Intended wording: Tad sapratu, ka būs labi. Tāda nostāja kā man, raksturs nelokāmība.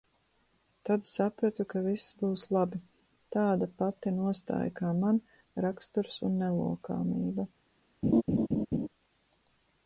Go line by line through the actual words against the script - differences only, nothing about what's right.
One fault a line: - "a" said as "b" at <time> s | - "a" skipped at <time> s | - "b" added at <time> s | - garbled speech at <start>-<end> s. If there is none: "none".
- "viss" added at 1.9 s
- "pati" added at 3.8 s
- "un" added at 6.3 s